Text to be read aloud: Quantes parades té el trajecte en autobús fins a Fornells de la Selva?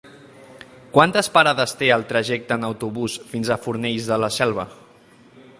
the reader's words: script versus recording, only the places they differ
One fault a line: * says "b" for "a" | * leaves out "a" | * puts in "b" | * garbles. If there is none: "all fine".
all fine